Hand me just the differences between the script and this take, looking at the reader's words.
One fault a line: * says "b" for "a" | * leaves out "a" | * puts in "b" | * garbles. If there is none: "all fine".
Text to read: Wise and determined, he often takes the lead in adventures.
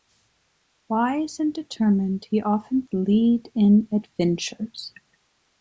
* leaves out "takes"